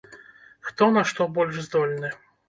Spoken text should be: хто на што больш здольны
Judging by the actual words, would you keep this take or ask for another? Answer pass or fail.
pass